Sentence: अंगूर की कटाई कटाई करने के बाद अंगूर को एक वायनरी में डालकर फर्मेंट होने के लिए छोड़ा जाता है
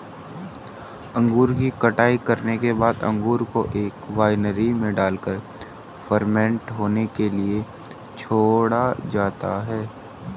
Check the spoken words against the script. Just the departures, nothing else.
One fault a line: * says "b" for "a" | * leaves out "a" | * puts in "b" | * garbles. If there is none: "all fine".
* leaves out "कटाई"